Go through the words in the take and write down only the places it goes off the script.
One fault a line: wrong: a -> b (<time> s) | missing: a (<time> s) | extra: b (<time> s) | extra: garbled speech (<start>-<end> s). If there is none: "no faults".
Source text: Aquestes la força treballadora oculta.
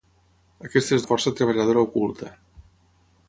no faults